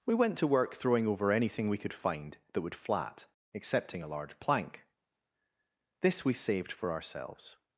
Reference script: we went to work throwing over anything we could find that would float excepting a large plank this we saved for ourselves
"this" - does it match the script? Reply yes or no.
yes